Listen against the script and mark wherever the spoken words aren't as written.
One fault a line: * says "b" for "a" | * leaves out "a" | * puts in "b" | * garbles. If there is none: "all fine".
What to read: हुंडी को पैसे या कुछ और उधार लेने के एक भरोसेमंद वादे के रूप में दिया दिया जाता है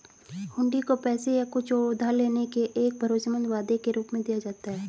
* leaves out "दिया"